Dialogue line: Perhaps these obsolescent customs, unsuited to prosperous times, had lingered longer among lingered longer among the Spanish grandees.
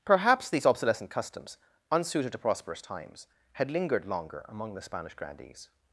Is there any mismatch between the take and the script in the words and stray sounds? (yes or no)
yes